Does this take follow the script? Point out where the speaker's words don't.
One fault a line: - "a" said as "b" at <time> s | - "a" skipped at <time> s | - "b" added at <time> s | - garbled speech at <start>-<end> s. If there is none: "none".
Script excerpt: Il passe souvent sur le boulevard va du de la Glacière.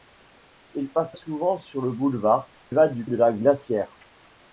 none